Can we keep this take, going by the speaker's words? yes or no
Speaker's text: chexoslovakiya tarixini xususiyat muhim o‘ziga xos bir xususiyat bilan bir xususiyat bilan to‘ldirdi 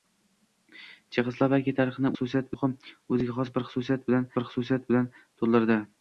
yes